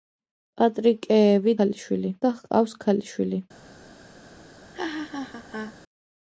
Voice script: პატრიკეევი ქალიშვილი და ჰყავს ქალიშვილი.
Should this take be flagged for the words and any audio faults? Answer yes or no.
yes